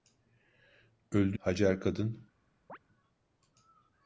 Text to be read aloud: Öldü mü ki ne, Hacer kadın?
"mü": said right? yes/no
no